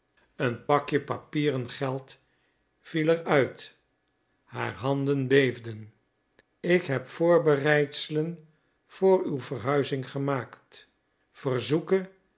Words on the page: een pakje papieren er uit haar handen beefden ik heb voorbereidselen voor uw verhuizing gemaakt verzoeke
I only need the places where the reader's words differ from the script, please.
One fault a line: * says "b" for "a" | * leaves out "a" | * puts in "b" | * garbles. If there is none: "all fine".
* puts in "geld viel"